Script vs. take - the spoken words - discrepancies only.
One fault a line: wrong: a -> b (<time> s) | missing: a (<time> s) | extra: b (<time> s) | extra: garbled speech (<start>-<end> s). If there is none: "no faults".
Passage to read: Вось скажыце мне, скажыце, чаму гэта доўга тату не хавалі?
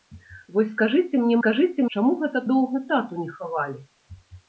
no faults